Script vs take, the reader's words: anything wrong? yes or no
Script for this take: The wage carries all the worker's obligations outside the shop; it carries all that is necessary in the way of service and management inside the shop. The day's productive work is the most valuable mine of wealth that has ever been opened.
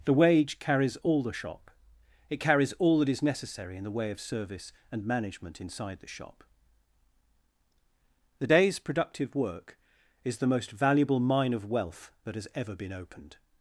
yes